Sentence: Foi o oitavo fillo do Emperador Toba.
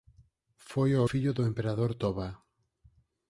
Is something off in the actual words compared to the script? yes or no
yes